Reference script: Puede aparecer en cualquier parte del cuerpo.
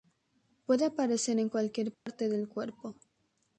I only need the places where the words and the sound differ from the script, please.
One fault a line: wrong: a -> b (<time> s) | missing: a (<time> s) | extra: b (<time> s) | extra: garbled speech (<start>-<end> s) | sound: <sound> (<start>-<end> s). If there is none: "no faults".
sound: dropout (1.9-2.1 s)